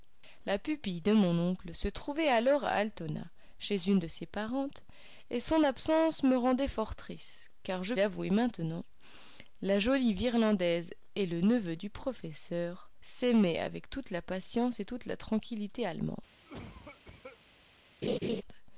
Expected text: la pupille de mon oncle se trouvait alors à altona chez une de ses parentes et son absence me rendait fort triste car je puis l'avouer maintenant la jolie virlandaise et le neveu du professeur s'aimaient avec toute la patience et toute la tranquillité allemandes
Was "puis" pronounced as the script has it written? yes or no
no